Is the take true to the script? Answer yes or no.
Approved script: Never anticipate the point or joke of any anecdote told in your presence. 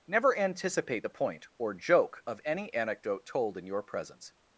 yes